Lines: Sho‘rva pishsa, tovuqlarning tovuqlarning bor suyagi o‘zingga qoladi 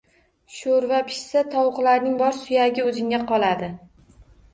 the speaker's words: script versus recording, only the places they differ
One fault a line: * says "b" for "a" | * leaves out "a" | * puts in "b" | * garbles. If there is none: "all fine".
* leaves out "tovuqlarning"